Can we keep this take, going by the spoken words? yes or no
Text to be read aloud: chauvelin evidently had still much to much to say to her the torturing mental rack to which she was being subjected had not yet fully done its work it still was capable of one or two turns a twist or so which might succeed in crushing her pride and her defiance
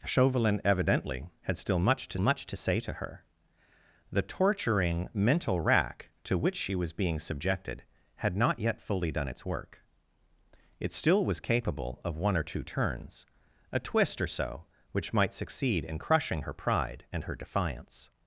yes